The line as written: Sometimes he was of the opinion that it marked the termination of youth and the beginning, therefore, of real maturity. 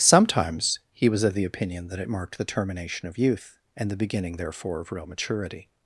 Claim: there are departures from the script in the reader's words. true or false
false